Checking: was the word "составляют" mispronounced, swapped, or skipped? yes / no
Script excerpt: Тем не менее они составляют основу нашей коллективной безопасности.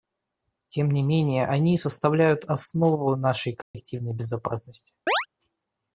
no